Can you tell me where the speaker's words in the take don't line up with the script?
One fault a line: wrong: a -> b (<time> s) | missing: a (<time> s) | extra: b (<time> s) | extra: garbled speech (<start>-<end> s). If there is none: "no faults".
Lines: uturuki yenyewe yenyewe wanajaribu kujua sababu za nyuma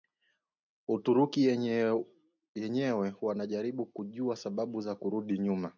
missing: yenyewe (3.1 s)
extra: kurudi (5.0 s)